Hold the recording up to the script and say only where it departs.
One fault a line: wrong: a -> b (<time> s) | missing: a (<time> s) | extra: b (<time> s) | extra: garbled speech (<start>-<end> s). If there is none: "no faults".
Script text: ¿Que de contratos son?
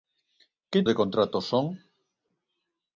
no faults